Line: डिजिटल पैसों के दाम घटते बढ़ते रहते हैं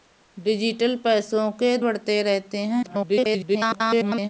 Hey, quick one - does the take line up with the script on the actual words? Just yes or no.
no